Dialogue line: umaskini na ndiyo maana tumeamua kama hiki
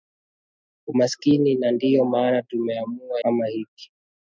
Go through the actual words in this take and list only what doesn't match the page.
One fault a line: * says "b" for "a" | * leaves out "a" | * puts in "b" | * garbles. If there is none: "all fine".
all fine